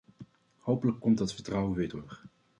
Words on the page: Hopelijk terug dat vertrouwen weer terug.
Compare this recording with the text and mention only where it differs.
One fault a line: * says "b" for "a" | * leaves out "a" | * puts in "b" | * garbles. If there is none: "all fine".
* says "komt" for "terug"